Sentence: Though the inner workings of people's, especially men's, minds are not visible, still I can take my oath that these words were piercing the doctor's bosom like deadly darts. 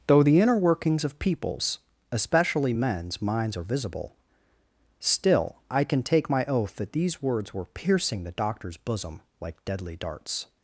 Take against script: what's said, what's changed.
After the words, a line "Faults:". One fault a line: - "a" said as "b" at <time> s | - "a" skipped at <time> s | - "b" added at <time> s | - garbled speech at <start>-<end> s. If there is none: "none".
Though the inner workings of people's, especially men's, minds are visible, still I can take my oath that these words were piercing the doctor's bosom like deadly darts.
Faults:
- "not" skipped at 3.6 s